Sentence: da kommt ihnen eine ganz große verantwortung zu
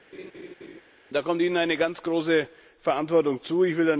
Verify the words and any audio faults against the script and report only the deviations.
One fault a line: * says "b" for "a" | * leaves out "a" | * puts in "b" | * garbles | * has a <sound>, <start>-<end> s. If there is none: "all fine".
* has a laugh, 0.1-0.8 s